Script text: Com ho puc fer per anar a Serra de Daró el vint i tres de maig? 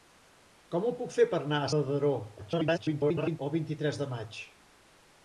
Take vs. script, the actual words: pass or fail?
fail